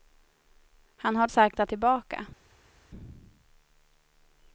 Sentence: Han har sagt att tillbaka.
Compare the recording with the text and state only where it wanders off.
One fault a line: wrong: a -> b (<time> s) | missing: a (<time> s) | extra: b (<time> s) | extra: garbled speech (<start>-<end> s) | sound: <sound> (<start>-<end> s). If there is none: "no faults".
no faults